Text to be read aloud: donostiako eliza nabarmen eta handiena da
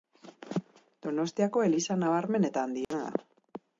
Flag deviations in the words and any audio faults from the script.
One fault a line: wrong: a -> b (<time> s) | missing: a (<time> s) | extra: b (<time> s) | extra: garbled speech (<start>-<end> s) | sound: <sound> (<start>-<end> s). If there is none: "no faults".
sound: dropout (2.8-2.9 s)